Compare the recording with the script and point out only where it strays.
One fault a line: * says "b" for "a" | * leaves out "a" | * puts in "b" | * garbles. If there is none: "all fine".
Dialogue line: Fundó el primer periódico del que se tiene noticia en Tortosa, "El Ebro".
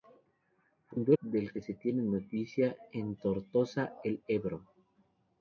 * leaves out "el primer periódico"